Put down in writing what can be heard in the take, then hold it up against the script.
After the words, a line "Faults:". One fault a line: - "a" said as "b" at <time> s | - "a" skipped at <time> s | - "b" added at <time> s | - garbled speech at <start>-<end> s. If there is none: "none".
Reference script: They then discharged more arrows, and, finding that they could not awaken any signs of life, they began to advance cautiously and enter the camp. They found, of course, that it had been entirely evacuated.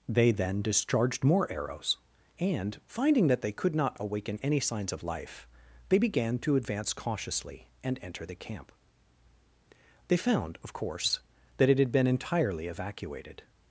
They then discharged more arrows, and, finding that they could not awaken any signs of life, they began to advance cautiously and enter the camp. They found, of course, that it had been entirely evacuated.
Faults:
none